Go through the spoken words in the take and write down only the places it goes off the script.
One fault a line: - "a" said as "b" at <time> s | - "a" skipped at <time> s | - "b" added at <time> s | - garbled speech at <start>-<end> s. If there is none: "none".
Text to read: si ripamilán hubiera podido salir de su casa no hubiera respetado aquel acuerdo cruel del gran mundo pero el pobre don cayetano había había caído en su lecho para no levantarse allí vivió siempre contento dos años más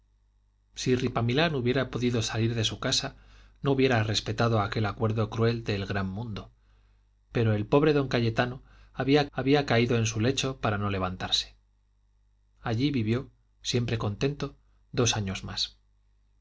none